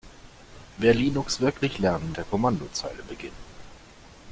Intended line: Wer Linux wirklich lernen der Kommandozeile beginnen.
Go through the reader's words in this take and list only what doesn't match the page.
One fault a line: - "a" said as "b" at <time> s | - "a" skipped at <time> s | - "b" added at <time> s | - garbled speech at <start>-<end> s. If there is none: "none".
none